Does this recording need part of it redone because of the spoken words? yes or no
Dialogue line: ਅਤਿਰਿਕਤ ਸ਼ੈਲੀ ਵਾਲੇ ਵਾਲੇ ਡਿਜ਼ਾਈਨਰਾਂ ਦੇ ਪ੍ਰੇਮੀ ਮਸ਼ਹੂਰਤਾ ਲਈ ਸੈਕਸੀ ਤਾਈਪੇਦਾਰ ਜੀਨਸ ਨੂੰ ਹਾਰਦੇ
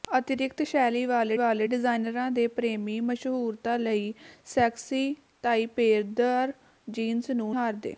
no